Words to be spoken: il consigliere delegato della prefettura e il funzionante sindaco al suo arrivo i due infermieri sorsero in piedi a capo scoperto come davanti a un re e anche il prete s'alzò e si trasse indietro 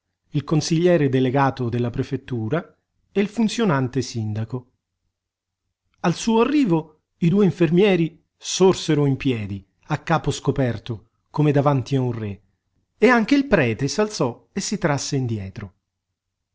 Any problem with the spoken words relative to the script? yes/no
no